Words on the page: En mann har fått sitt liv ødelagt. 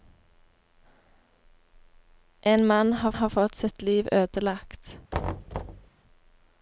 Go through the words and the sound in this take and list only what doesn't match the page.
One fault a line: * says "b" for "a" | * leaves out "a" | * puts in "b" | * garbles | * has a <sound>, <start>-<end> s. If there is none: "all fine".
* puts in "har"
* has a thud, 5.1-5.9 s